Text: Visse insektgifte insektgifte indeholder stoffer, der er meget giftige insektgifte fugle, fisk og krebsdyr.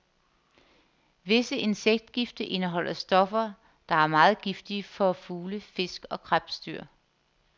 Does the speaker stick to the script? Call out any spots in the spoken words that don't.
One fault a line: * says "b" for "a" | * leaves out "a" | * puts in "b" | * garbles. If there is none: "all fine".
* leaves out "insektgifte"
* says "for" for "insektgifte"